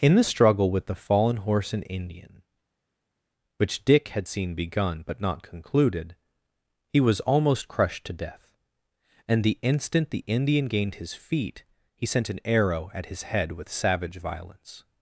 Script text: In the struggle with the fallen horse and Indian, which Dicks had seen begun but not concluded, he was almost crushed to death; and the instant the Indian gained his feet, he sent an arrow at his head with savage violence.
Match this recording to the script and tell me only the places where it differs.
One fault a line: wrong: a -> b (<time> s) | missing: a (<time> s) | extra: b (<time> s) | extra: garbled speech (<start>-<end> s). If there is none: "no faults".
wrong: Dicks -> Dick (3.8 s)